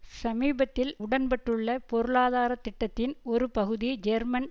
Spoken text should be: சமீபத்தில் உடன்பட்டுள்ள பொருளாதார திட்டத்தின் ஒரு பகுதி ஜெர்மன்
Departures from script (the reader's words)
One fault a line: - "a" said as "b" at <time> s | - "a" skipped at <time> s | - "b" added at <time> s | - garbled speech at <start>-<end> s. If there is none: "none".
none